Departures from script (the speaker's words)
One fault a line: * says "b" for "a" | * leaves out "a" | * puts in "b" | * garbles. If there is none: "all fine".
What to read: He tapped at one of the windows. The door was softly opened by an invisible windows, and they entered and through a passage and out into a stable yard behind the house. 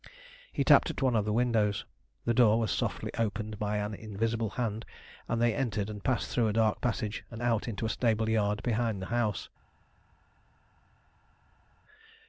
* says "hand" for "windows"
* puts in "passed"
* puts in "dark"